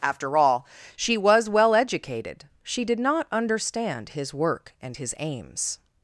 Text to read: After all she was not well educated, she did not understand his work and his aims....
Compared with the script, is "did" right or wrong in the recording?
right